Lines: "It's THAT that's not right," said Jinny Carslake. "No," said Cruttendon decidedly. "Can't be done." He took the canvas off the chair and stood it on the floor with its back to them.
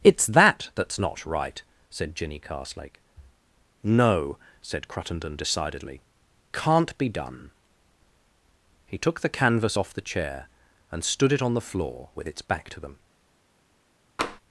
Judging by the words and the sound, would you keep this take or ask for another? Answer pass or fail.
fail